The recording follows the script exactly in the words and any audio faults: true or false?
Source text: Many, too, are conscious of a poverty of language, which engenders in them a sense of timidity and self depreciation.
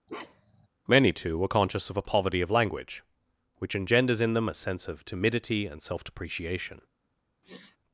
false